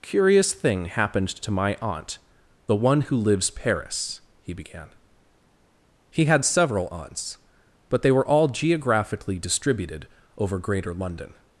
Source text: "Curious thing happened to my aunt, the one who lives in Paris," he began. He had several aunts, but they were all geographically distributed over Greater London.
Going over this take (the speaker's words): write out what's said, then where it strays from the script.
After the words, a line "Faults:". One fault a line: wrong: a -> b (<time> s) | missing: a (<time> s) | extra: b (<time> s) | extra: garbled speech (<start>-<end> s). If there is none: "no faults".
"Curious thing happened to my aunt, the one who lives Paris," he began. He had several aunts, but they were all geographically distributed over Greater London.
Faults:
missing: in (3.5 s)